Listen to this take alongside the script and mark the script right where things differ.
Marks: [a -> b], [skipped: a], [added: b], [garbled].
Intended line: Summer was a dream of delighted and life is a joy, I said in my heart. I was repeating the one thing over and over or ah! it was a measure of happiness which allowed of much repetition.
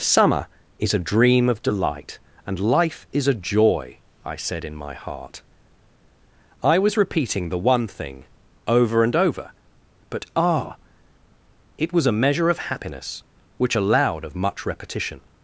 Summer [was -> is] a dream of [delighted -> delight] and life is a joy, I said in my heart. I was repeating the one thing over and over [or -> but] ah! it was a measure of happiness which allowed of much repetition.